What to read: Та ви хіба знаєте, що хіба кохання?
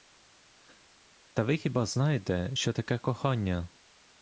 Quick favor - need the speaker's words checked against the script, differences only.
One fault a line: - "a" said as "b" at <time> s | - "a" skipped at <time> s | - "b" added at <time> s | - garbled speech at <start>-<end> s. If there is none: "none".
- "хіба" said as "таке" at 2.7 s